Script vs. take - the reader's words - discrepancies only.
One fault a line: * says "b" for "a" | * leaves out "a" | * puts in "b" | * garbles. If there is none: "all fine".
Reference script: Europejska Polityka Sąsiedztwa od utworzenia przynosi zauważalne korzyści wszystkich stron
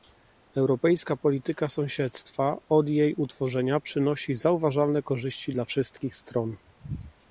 * puts in "jej"
* puts in "dla"